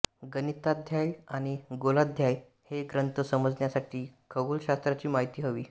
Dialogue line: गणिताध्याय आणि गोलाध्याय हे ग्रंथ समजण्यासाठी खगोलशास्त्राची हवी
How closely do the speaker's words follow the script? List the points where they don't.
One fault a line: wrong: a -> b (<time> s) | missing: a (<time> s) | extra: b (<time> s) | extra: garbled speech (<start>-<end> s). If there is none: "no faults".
extra: माहिती (5.1 s)